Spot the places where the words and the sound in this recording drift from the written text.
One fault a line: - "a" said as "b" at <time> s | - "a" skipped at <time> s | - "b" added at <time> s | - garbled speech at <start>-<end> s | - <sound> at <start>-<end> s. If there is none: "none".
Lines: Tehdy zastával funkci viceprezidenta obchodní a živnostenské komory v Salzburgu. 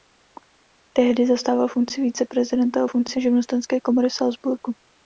- "obchodní" said as "funkci" at 2.9 s